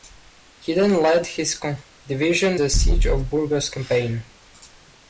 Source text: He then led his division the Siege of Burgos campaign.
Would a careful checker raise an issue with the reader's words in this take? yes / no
no